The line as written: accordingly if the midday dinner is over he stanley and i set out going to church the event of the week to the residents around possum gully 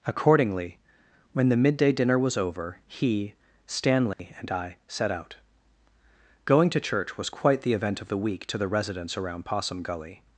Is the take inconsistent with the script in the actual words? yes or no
yes